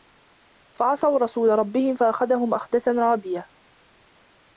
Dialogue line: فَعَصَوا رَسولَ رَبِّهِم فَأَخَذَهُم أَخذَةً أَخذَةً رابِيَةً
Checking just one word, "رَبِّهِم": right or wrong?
right